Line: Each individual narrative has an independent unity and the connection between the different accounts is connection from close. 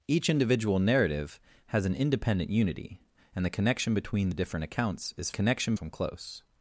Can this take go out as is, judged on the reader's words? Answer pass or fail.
pass